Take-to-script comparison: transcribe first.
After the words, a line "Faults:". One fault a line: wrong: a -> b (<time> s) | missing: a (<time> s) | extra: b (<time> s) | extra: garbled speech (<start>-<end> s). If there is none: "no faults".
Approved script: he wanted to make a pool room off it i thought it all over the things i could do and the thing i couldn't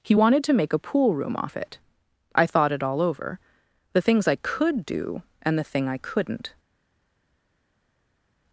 he wanted to make a pool room off it i thought it all over the things i could do and the thing i couldn't
Faults:
no faults